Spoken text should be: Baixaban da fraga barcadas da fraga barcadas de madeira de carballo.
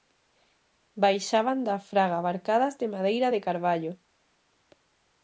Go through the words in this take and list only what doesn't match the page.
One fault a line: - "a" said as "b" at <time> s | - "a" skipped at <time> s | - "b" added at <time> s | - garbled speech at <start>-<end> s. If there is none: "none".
- "da fraga barcadas" skipped at 2.7 s